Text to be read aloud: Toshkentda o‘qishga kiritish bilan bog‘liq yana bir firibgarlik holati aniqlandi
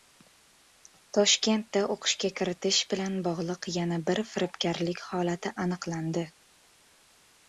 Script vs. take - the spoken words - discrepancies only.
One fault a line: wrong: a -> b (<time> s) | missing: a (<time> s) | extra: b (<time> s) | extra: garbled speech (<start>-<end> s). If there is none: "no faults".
no faults